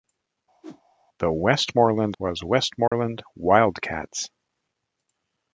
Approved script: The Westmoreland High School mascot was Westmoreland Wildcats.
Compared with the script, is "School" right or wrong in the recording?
wrong